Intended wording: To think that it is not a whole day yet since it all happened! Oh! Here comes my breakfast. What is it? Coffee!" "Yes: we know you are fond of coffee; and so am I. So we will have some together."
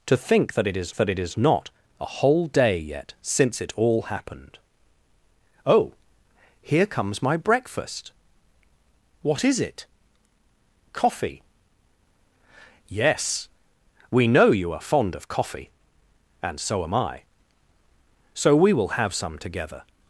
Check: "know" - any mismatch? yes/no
no